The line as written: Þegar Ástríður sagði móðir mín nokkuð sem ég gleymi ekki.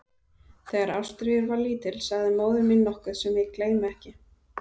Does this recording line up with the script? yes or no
no